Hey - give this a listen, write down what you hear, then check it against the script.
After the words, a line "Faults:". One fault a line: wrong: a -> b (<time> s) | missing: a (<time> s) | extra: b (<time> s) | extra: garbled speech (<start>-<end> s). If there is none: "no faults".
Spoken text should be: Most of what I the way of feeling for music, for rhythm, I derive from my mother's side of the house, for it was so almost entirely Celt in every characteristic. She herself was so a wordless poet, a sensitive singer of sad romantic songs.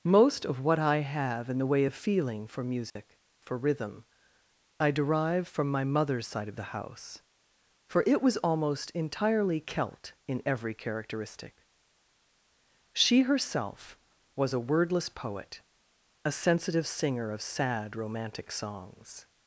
Most of what I have in the way of feeling for music, for rhythm, I derive from my mother's side of the house, for it was almost entirely Celt in every characteristic. She herself was a wordless poet, a sensitive singer of sad romantic songs.
Faults:
extra: have in (1.0 s)
missing: so (8.4 s)
missing: so (14.5 s)